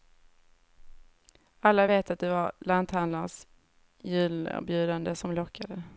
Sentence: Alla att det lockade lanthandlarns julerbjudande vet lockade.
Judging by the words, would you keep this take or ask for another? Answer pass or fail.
fail